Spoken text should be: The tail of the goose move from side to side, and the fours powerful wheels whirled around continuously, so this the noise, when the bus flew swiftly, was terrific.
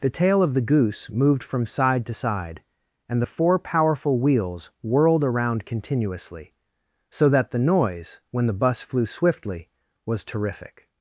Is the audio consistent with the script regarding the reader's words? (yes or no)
no